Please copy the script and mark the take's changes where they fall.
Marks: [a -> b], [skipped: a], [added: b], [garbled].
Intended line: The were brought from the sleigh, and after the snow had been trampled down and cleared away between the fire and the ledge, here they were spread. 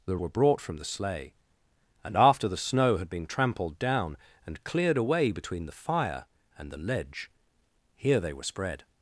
The were brought from the sleigh, and after the snow had been trampled down and cleared away between the fire and the ledge, here they were spread.